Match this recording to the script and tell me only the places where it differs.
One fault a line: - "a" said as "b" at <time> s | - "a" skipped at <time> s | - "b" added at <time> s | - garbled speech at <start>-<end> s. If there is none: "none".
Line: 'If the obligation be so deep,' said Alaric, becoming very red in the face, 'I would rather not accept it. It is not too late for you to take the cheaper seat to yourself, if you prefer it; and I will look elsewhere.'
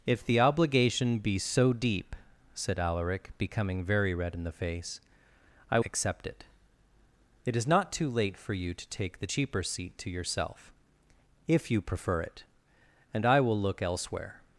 - "would rather not" skipped at 5.8 s